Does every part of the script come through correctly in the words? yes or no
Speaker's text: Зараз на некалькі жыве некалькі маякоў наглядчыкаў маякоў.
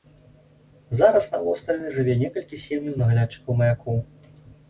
no